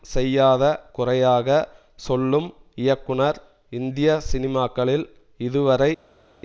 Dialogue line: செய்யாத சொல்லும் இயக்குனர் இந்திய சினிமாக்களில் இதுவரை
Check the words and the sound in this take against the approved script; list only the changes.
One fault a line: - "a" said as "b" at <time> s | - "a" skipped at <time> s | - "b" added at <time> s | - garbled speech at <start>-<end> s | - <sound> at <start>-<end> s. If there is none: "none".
- "குறையாக" added at 0.9 s